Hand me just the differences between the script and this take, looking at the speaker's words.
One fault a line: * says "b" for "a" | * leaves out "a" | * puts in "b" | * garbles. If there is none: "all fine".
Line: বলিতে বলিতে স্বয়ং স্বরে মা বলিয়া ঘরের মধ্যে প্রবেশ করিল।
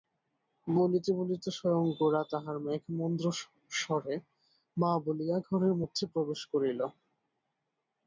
* puts in "গোরা তাহার মেঘমন্দ্র"